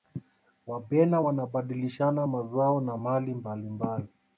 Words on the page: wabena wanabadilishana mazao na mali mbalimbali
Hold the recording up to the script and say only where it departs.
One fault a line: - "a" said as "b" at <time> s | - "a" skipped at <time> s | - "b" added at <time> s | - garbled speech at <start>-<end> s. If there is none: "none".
none